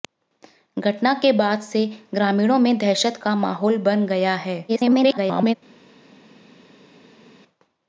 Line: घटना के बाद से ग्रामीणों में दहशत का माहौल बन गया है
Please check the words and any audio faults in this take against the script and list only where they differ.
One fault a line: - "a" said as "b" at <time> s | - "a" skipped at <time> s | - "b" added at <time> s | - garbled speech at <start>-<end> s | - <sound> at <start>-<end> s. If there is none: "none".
- garbled speech at 4.7-5.5 s